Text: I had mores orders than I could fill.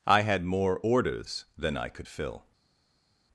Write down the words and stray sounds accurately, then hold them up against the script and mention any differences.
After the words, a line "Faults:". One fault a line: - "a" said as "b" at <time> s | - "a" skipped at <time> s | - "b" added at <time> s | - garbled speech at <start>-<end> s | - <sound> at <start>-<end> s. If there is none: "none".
I had more orders than I could fill.
Faults:
- "mores" said as "more" at 0.4 s